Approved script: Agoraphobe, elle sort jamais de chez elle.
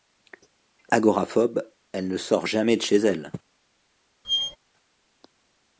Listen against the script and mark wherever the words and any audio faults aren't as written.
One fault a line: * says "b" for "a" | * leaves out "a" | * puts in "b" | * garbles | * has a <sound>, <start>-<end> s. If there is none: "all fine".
* puts in "ne"
* has a squeak, 4.2-4.6 s